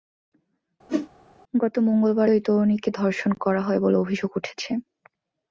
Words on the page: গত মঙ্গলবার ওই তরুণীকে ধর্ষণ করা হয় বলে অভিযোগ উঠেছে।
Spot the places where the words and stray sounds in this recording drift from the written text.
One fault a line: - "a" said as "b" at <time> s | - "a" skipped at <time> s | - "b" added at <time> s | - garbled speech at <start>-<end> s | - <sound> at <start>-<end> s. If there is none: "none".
- whoosh at 0.9-1.1 s